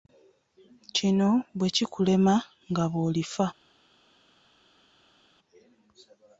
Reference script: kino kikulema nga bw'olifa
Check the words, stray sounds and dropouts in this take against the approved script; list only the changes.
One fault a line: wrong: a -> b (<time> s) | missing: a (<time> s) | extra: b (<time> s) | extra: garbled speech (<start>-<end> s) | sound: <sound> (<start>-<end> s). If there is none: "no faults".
extra: bwe (1.6 s)